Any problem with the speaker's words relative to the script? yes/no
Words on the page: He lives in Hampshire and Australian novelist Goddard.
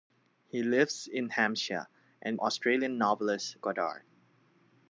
no